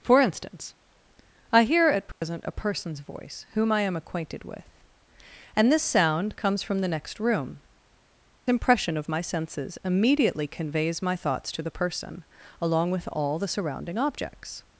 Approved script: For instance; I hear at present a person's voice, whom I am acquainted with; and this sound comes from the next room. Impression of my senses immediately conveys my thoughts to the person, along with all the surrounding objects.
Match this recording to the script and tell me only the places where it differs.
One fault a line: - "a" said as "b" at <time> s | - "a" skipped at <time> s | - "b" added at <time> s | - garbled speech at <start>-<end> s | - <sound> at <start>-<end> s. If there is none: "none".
- dropout at 2.1-2.2 s